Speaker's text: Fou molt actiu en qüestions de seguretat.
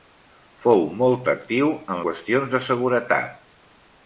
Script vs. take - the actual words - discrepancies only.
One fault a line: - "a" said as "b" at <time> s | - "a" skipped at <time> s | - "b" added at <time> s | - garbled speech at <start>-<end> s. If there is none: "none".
none